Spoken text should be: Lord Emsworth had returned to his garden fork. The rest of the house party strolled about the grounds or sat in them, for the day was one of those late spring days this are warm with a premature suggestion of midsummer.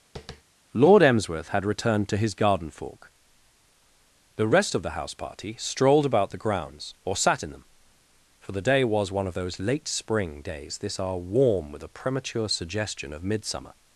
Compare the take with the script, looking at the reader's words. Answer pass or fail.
pass